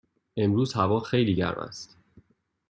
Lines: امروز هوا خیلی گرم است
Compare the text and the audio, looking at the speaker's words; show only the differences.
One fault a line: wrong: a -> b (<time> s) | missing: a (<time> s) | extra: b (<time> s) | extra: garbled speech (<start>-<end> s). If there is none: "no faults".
no faults